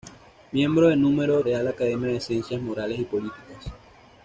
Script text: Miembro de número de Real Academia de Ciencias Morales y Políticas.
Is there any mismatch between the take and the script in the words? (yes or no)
yes